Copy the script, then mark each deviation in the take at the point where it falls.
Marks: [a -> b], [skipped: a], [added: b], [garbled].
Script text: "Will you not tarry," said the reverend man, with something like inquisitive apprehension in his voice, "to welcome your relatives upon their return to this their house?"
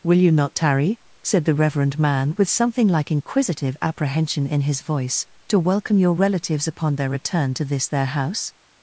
"Will you not tarry," said the reverend man, with something like inquisitive apprehension in his voice, "to welcome your relatives upon their return to this their house?"